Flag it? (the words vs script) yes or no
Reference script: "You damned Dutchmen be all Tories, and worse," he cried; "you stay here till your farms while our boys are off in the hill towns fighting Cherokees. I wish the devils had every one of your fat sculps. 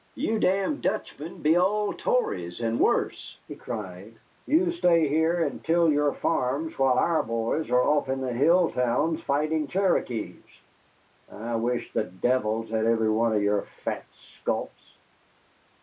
yes